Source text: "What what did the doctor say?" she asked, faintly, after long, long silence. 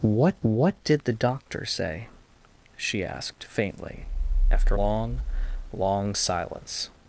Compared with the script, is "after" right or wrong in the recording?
right